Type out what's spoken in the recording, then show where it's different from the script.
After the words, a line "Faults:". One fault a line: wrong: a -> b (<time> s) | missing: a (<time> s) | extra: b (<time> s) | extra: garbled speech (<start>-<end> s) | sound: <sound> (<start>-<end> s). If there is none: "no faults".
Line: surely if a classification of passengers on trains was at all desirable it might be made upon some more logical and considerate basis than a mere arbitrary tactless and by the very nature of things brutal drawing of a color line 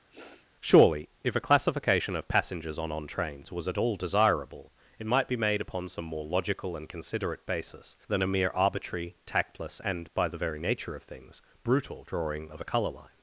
surely if a classification of passengers on on trains was at all desirable it might be made upon some more logical and considerate basis than a mere arbitrary tactless and by the very nature of things brutal drawing of a color line
Faults:
sound: sniff (0.1-0.5 s)
extra: on (2.9 s)